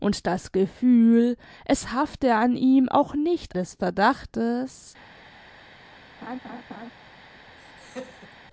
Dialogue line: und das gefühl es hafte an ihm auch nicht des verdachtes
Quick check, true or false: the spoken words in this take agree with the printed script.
true